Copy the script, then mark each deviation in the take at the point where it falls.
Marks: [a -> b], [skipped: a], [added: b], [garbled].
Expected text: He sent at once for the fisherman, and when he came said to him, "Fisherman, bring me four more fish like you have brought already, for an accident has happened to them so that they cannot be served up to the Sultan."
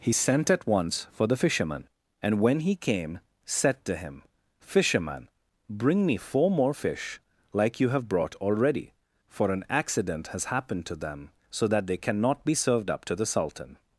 He sent at once for the fisherman, and when he came said to him, "Fisherman, bring me four more fish like you have brought already, for an accident has happened to them so that they cannot be served up to the Sultan."